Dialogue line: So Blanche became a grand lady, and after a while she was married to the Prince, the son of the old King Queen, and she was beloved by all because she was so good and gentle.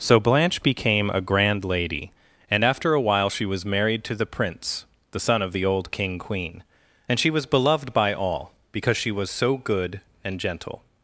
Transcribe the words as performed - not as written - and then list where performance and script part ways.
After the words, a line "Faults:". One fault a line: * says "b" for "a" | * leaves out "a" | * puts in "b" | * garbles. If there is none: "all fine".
So Blanche became a grand lady, and after a while she was married to the Prince, the son of the old King Queen, and she was beloved by all because she was so good and gentle.
Faults:
all fine